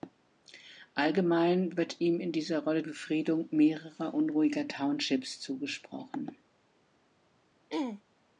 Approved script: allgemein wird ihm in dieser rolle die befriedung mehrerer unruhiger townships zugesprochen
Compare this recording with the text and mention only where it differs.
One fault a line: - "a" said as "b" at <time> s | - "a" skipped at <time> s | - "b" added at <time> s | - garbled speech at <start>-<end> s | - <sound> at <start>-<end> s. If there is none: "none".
- "die" skipped at 2.8 s
- throat clearing at 7.7-8.0 s